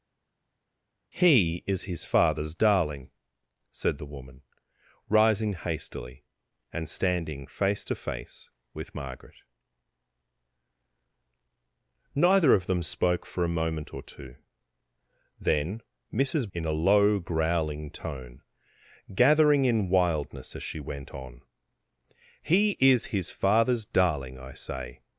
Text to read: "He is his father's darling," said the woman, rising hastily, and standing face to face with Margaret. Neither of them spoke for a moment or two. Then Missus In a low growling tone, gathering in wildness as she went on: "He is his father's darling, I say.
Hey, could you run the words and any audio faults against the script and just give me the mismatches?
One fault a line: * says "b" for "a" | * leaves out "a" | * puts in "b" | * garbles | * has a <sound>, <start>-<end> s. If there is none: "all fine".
all fine